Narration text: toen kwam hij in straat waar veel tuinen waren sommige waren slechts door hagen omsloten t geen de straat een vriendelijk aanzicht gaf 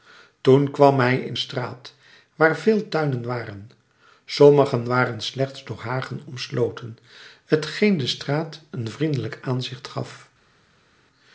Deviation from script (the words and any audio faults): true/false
false